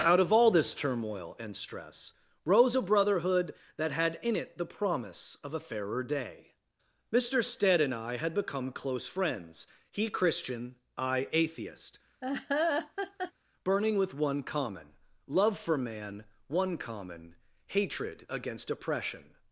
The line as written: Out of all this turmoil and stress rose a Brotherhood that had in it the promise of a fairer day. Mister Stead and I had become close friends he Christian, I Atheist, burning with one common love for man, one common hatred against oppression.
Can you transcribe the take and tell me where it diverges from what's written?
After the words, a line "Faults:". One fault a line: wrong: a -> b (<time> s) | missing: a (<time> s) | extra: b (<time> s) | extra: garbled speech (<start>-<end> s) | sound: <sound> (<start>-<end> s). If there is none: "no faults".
Out of all this turmoil and stress rose a Brotherhood that had in it the promise of a fairer day. Mister Stead and I had become close friends he Christian, I Atheist, burning with one common love for man, one common hatred against oppression.
Faults:
sound: laugh (12.2-13.3 s)